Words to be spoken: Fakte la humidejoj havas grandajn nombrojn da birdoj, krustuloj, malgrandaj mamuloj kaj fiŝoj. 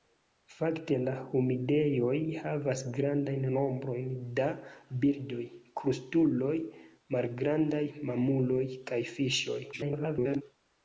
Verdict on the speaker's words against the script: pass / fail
fail